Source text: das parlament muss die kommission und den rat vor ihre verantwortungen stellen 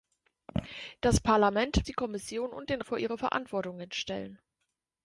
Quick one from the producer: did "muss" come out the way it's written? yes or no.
no